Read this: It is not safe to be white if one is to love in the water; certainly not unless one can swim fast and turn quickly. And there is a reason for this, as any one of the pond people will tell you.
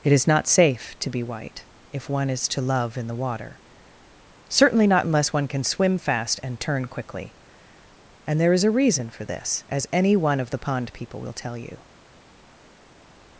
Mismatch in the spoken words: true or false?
false